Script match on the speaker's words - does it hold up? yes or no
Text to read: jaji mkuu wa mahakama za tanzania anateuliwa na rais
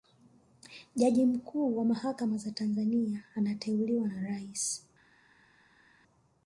yes